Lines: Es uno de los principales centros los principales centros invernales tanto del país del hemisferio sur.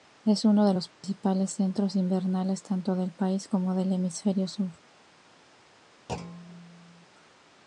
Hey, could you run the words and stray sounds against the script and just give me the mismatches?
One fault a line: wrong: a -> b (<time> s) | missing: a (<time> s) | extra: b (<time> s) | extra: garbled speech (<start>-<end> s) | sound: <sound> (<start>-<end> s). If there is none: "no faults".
sound: dropout (0.9-1.0 s)
missing: los principales centros (2.0 s)
extra: como (3.5 s)
sound: thud (6.1-7.1 s)